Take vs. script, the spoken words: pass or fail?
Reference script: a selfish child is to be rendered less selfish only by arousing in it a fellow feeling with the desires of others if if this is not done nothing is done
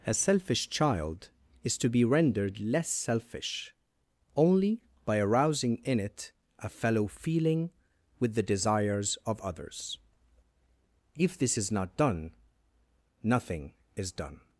fail